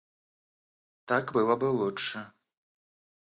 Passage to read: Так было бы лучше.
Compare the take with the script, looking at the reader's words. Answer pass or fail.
pass